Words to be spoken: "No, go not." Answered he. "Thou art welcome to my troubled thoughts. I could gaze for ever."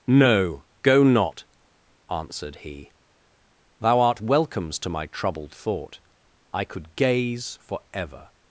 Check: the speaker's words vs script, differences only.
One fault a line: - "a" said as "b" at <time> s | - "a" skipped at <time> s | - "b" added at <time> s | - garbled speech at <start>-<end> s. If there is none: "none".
- "welcome" said as "welcomes" at 4.2 s
- "thoughts" said as "thought" at 5.5 s